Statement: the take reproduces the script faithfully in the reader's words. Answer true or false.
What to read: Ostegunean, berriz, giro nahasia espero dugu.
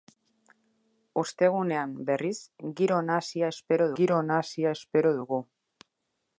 false